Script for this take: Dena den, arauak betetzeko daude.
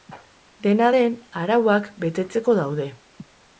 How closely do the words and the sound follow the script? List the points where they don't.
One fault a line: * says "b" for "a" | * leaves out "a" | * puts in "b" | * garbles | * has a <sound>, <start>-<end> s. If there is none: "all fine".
all fine